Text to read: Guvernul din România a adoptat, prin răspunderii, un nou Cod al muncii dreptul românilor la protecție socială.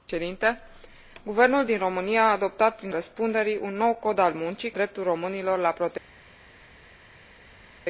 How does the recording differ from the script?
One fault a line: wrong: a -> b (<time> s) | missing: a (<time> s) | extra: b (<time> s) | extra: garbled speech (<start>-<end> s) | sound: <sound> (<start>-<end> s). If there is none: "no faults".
no faults